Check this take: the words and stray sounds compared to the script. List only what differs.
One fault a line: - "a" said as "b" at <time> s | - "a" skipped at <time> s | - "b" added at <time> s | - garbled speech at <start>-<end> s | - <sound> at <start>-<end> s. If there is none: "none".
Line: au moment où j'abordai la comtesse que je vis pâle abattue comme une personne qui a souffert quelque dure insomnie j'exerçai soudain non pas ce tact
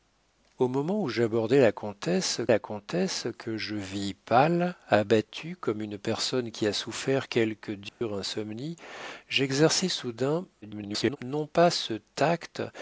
- "la comtesse" added at 2.5 s
- dropout at 7.9-8.0 s
- garbled speech at 10.6-11.2 s